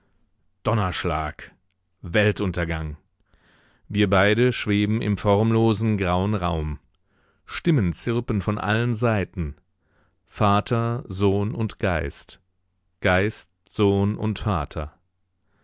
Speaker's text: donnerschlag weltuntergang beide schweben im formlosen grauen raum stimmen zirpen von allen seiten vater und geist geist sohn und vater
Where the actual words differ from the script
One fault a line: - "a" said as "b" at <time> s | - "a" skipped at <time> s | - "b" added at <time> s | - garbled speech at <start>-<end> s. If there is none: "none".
- "wir" added at 3.9 s
- "sohn" added at 11.1 s